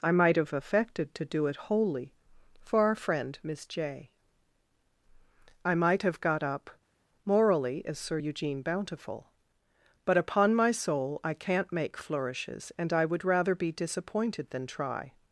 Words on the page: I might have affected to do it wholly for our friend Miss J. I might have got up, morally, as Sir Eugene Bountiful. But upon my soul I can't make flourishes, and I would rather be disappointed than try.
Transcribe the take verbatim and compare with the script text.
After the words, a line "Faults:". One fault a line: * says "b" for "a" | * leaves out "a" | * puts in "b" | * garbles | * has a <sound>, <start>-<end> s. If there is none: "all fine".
I might have affected to do it wholly for our friend Miss J. I might have got up, morally, as Sir Eugene Bountiful. But upon my soul I can't make flourishes, and I would rather be disappointed than try.
Faults:
all fine